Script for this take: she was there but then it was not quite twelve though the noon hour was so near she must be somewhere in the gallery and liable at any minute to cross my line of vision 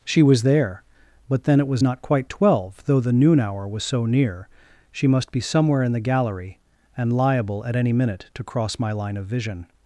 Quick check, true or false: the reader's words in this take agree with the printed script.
true